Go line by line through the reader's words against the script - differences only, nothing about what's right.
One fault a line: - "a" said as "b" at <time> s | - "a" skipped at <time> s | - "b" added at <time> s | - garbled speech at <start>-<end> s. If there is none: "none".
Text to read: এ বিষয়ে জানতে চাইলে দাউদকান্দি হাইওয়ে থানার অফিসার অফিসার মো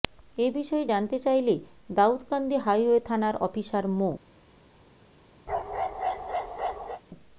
- "অফিসার" skipped at 3.9 s